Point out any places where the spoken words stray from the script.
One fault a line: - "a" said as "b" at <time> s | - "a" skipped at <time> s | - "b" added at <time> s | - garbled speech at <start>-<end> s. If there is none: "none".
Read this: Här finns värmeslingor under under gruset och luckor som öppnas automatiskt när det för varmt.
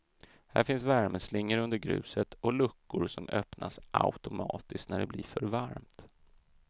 - "under" skipped at 1.8 s
- "blir" added at 5.0 s